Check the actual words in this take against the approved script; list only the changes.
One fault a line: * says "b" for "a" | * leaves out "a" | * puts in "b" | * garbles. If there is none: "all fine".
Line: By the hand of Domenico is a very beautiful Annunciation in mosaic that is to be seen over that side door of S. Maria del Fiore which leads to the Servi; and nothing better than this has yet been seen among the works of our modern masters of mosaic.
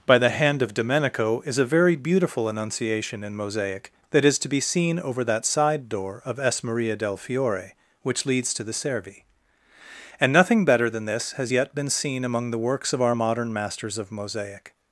all fine